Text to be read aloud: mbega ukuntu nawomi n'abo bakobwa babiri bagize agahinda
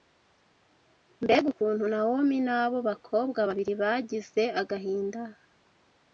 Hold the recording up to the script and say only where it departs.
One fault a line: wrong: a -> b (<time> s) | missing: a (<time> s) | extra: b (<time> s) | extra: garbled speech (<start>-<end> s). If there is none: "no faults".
no faults